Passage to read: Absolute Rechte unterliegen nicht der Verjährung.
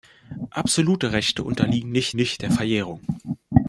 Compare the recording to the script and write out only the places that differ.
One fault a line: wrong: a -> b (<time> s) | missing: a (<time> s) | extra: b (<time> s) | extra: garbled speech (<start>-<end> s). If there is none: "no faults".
extra: nicht (2.1 s)